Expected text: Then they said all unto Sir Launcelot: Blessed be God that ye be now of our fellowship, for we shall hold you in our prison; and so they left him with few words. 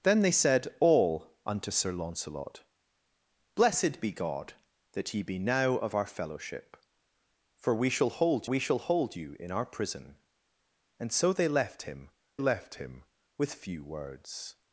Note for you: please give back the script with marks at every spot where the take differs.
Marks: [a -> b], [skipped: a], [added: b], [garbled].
Then they said all unto Sir Launcelot: Blessed be God that ye be now of our fellowship, for we shall hold [added: we shall hold] you in our prison; and so they left him [added: left him] with few words.